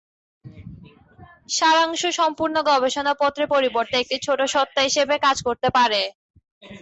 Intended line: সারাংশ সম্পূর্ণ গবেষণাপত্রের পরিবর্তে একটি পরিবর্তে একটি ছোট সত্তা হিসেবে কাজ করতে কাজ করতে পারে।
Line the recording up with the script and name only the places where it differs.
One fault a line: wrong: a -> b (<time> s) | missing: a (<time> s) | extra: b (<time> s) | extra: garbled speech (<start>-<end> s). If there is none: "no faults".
missing: পরিবর্তে একটি (4.2 s)
missing: কাজ করতে (5.7 s)